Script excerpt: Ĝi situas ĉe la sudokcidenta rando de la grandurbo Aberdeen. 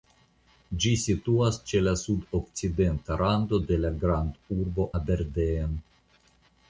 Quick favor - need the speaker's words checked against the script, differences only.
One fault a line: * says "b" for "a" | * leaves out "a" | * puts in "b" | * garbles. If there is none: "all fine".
all fine